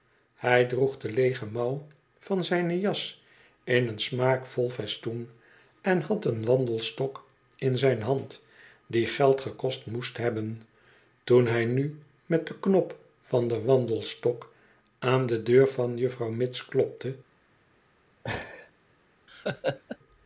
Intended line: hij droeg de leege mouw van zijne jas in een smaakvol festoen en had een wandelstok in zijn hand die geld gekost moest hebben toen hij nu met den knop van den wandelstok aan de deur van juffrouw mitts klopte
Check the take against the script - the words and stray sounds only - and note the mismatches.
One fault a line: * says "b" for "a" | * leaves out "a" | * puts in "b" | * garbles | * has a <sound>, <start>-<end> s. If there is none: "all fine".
* has a laugh, 18.2-18.7 s
* has a laugh, 19.3-20.0 s